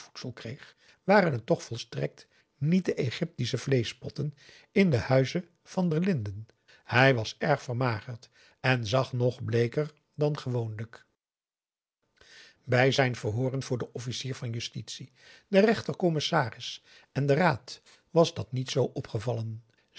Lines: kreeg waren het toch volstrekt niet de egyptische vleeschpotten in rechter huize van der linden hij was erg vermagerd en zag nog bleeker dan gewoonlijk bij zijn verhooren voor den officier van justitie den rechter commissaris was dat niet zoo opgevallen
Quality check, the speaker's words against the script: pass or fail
fail